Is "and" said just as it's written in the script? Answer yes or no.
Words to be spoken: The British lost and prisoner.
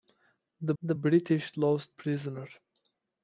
no